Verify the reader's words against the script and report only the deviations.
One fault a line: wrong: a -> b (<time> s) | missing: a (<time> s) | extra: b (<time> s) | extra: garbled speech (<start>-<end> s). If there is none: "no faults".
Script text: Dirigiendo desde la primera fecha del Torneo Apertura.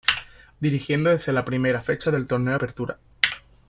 no faults